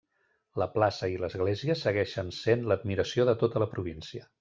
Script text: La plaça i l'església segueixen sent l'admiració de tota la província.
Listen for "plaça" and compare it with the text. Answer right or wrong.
right